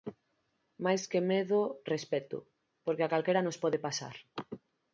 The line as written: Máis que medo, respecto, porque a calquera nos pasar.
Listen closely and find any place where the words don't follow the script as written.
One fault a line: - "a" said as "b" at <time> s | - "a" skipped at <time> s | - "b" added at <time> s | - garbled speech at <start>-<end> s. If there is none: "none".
- "pode" added at 3.6 s